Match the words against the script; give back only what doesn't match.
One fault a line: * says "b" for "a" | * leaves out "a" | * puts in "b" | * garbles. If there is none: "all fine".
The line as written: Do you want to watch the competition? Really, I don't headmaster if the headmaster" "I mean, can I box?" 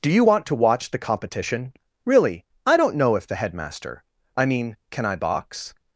* says "know" for "headmaster"